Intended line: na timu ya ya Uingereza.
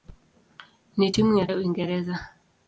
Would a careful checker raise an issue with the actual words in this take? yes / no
no